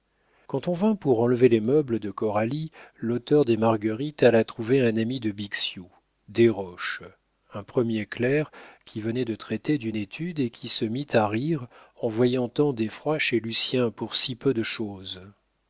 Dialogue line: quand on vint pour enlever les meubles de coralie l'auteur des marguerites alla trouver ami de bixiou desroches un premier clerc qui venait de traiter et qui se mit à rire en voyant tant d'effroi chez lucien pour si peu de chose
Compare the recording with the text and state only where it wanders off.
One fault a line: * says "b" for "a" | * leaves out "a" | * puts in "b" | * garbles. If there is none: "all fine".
* puts in "un"
* puts in "d'une étude"